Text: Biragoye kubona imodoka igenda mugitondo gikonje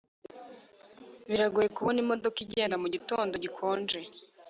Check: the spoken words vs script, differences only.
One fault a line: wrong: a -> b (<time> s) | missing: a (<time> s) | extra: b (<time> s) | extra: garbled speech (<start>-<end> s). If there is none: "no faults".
no faults